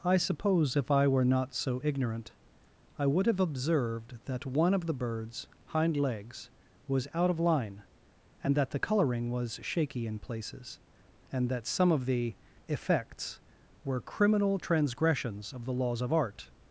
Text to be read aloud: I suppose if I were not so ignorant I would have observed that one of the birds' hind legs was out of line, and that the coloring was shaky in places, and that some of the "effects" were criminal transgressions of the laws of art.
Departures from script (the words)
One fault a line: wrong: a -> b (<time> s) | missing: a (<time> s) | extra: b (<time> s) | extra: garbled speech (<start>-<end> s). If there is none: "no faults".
no faults